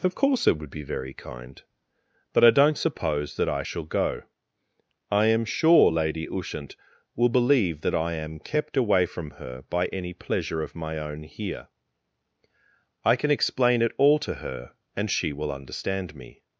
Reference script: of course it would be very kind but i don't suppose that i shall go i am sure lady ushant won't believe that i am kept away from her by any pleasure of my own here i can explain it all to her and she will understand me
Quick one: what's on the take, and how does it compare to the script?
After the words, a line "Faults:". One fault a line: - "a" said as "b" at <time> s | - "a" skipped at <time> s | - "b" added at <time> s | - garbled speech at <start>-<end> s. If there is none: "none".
of course it would be very kind but i don't suppose that i shall go i am sure lady ushant will believe that i am kept away from her by any pleasure of my own here i can explain it all to her and she will understand me
Faults:
- "won't" said as "will" at 7.2 s